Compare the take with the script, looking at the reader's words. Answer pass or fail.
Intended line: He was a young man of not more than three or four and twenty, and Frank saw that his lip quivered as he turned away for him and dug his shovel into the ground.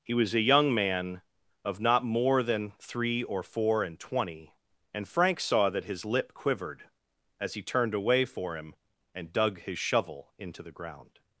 pass